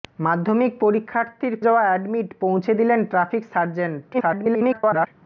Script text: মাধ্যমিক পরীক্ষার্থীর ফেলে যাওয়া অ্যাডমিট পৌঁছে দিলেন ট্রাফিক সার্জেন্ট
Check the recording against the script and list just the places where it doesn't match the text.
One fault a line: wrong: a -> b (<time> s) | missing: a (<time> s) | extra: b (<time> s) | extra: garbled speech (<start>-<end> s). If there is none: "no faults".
missing: ফেলে (1.5 s)
extra: garbled speech (4.1-5.1 s)